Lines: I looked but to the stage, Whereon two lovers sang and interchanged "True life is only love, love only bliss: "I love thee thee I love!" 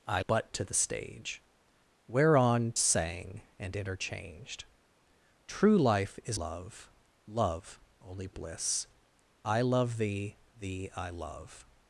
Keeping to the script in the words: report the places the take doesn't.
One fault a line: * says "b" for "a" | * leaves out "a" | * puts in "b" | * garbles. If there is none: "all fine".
* leaves out "looked"
* leaves out "two lovers"
* leaves out "only"